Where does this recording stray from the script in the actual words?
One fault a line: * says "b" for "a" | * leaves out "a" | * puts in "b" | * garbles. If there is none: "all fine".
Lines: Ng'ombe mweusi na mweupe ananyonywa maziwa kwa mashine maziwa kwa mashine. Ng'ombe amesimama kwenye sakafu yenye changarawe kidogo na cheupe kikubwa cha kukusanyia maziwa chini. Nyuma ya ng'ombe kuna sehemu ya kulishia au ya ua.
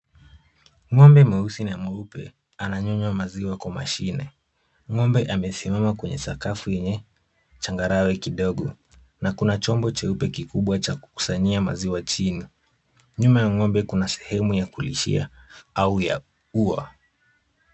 * leaves out "maziwa kwa mashine"
* puts in "kuna chombo"